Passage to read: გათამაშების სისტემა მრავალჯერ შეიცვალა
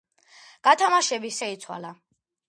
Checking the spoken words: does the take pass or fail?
fail